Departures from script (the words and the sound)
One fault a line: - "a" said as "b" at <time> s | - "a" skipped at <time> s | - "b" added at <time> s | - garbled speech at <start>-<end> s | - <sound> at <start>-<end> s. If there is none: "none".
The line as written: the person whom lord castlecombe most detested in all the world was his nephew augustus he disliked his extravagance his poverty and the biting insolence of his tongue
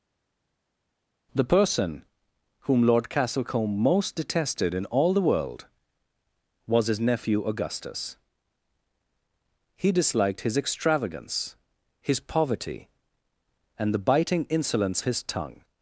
- "of" skipped at 15.0 s